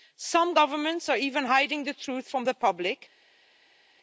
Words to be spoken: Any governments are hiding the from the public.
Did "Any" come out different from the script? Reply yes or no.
yes